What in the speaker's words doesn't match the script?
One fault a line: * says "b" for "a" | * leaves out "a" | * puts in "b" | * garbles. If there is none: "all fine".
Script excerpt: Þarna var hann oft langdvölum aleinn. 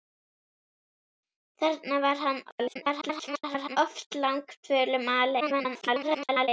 * garbles
* garbles